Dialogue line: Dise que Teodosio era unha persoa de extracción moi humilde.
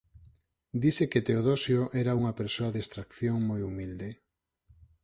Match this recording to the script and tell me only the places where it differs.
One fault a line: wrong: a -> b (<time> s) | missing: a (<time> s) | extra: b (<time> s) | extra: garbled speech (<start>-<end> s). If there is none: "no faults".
no faults